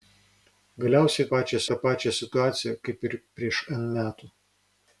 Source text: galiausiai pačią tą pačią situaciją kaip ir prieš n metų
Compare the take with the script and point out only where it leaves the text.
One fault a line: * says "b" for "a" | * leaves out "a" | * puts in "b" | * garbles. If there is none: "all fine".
all fine